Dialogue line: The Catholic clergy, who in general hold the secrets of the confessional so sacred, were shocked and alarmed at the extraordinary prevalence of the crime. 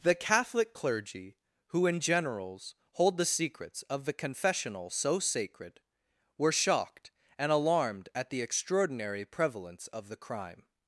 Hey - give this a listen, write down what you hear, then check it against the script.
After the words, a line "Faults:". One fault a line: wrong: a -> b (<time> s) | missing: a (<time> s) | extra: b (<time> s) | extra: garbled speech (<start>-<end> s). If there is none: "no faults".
The Catholic clergy, who in generals hold the secrets of the confessional so sacred, were shocked and alarmed at the extraordinary prevalence of the crime.
Faults:
wrong: general -> generals (2.0 s)